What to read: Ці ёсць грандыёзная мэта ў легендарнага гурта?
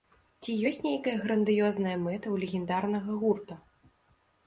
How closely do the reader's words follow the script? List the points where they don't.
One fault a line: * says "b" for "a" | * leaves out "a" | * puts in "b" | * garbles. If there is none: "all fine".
* puts in "нейкая"